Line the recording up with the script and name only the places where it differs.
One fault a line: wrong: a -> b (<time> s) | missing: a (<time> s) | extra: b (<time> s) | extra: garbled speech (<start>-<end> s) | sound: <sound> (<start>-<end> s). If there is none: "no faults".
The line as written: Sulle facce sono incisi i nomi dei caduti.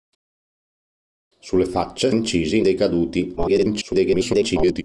missing: sono (2.1 s)
missing: nomi (2.6 s)
extra: garbled speech (3.4-4.8 s)